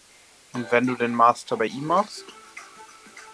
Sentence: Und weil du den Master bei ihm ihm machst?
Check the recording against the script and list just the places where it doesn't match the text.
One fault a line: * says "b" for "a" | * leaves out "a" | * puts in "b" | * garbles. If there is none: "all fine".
* says "wenn" for "weil"
* leaves out "ihm"